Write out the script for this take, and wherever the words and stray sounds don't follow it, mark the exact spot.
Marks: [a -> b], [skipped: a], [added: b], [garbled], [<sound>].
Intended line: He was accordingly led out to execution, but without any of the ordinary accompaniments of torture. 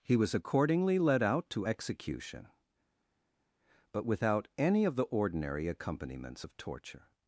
He was accordingly led out to execution, but without any of the ordinary accompaniments of torture.